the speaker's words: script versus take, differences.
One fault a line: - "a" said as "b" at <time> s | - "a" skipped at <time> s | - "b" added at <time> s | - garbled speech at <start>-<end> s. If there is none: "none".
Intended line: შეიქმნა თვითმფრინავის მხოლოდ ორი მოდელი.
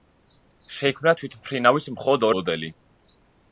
- "ორი" skipped at 2.3 s